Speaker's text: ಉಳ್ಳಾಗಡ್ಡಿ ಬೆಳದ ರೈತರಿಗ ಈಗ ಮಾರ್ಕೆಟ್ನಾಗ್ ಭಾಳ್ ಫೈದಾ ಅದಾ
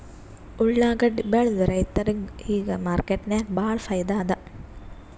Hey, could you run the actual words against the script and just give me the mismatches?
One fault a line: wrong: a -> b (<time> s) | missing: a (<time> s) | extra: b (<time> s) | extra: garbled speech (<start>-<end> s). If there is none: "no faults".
no faults